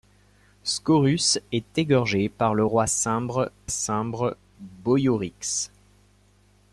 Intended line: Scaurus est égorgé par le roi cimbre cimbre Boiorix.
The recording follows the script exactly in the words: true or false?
true